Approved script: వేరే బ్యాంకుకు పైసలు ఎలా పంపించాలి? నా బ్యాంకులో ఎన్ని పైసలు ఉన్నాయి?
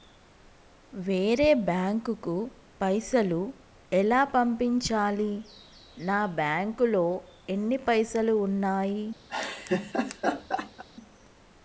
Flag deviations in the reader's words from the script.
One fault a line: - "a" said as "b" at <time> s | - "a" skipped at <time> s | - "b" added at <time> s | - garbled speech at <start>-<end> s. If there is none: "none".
none